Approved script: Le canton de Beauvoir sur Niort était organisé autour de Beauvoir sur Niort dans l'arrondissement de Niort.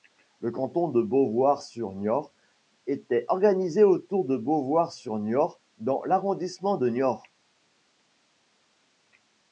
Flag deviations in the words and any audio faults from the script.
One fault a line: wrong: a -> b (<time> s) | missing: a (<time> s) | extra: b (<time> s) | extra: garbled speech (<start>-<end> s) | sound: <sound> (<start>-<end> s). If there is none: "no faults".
no faults